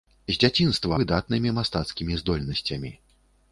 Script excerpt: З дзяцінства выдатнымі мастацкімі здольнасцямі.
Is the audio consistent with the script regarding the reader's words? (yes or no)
yes